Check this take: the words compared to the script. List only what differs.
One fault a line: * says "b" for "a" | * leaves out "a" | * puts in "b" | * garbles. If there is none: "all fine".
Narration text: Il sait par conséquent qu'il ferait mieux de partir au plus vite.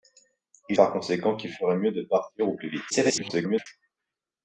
* leaves out "sait"
* garbles